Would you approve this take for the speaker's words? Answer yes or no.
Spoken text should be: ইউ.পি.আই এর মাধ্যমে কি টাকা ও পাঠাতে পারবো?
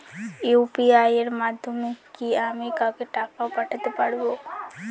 no